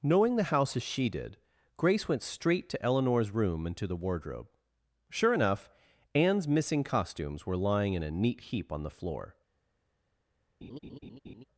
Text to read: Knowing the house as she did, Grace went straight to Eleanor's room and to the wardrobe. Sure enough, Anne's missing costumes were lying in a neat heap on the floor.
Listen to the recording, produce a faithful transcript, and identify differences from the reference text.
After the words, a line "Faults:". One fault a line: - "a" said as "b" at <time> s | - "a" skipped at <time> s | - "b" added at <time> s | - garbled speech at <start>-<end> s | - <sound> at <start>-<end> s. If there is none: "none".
Knowing the house as she did, Grace went straight to Eleanor's room and to the wardrobe. Sure enough, Anne's missing costumes were lying in a neat heap on the floor.
Faults:
- laugh at 10.6-11.4 s